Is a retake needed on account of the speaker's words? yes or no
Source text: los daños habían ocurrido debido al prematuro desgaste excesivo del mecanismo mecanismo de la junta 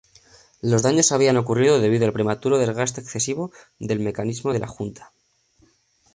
yes